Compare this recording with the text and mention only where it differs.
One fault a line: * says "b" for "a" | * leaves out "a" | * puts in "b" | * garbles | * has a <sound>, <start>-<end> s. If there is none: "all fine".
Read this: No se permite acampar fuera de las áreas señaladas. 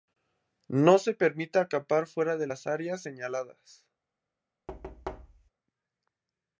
* has a thud, 4.7-5.5 s